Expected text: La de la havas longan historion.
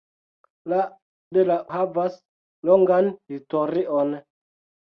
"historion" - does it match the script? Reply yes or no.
yes